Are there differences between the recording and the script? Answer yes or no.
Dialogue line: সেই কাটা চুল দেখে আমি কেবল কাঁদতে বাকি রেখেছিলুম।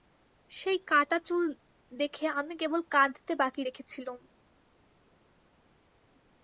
no